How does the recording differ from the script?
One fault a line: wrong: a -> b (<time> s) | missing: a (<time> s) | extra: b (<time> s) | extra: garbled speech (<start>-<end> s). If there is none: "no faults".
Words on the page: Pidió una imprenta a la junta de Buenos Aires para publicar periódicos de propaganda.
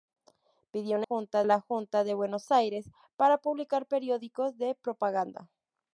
wrong: imprenta -> junta (1.0 s)